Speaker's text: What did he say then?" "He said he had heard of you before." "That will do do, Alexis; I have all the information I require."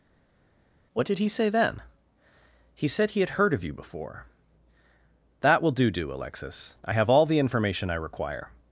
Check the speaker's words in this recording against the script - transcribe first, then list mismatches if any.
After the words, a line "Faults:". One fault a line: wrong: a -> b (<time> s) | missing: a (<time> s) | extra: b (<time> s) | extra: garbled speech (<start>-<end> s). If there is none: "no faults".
What did he say then?" "He said he had heard of you before." "That will do do, Alexis; I have all the information I require."
Faults:
no faults